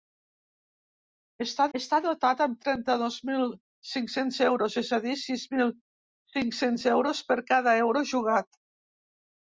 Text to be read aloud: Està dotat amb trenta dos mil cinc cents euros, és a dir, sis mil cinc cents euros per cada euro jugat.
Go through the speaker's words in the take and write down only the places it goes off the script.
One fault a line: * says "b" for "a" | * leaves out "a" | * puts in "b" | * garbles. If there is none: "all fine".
* puts in "està"